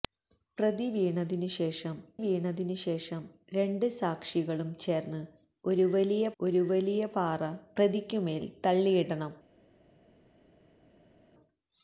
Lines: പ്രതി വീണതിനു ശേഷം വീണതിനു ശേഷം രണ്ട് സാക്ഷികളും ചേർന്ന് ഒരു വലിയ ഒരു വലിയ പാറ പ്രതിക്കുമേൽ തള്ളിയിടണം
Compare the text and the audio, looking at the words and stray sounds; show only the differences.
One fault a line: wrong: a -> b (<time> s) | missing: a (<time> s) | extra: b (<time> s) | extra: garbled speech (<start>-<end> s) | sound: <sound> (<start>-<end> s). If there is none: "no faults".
no faults